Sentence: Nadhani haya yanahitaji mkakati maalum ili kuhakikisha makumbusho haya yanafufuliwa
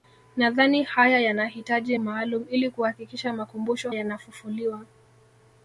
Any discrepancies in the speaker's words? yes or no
yes